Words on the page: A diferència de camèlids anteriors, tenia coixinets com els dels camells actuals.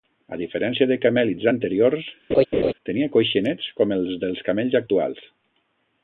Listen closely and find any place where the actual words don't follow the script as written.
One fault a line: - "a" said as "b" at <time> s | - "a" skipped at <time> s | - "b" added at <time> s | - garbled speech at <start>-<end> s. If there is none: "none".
none